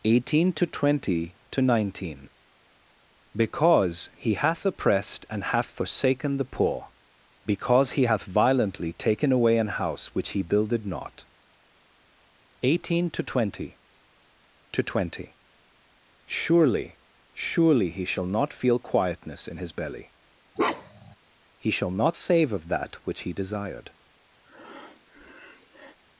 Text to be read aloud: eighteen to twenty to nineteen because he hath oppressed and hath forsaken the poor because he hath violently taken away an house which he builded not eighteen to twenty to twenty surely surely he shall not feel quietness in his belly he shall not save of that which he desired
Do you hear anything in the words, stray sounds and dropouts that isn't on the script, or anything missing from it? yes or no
yes